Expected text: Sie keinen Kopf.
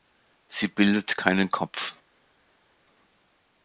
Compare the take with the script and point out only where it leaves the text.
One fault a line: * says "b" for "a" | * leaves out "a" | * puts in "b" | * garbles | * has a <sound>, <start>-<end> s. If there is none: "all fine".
* puts in "bildet"